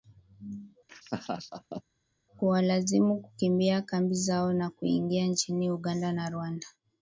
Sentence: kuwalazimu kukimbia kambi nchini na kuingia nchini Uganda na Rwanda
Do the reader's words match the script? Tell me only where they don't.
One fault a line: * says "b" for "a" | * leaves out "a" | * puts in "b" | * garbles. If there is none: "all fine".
* says "zao" for "nchini"